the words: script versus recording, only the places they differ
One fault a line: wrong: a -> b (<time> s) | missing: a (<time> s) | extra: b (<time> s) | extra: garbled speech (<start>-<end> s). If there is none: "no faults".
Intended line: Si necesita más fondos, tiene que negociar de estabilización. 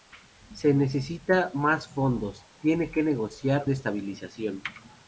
no faults